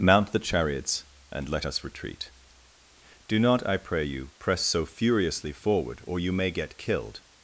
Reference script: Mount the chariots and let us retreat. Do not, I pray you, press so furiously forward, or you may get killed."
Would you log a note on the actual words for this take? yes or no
no